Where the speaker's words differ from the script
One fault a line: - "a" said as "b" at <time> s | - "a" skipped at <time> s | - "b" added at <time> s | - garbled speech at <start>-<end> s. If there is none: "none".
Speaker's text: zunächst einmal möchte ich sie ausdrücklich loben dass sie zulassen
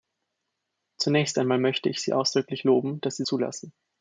none